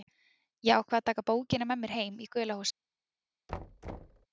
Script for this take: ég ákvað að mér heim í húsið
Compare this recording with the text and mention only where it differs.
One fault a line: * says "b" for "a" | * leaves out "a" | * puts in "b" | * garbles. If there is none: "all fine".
* puts in "taka bókina með"
* puts in "gula"